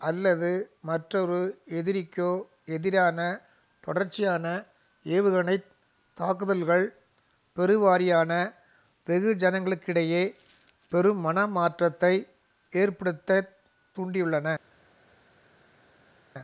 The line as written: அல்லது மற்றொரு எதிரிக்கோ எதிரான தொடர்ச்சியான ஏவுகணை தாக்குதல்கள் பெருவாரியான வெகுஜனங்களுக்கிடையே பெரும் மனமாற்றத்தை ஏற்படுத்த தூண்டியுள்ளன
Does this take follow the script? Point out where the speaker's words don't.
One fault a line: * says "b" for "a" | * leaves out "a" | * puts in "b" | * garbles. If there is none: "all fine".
all fine